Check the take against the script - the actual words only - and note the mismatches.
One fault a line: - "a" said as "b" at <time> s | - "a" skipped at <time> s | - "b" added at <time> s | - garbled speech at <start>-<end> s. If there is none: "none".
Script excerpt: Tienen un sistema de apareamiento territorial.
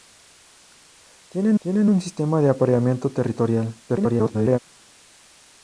- "tienen" added at 1.6 s
- garbled speech at 3.9-4.6 s